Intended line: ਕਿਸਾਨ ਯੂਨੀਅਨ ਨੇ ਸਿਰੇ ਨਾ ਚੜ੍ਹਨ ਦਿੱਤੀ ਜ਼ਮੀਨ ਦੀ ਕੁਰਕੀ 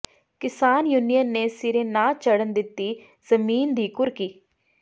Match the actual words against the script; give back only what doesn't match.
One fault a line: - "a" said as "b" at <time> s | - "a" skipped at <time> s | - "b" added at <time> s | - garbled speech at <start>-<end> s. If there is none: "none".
none